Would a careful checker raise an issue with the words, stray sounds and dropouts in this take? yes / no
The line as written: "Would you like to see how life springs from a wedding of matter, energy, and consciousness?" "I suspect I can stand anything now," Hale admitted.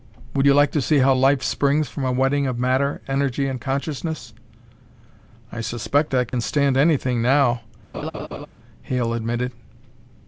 yes